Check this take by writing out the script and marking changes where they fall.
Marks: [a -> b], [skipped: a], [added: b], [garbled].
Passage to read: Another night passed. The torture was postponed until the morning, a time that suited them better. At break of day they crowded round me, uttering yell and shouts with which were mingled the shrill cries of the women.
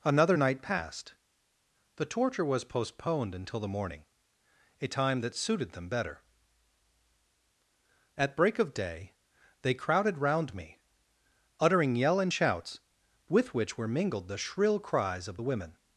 Another night passed. The torture was postponed until the morning, a time that suited them better. At break of day they crowded round me, uttering yell and shouts with which were mingled the shrill cries of the women.